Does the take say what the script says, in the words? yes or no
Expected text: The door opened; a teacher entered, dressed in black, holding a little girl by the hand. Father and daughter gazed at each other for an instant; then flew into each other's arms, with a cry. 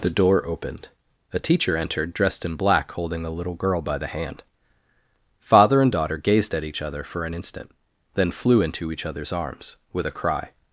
yes